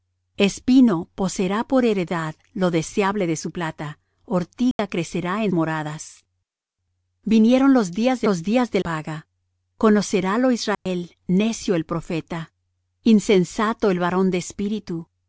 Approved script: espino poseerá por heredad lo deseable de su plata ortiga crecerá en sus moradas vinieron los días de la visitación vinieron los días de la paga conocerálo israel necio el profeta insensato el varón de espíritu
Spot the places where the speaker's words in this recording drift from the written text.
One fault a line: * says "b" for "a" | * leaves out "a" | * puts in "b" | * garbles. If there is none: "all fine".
* leaves out "sus"
* leaves out "la visitación vinieron"
* leaves out "la"